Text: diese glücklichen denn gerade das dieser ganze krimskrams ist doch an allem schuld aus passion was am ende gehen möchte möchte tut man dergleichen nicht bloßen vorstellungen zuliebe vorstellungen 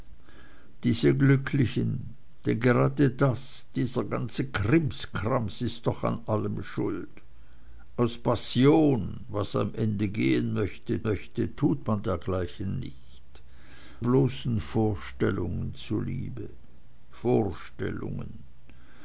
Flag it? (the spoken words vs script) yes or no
no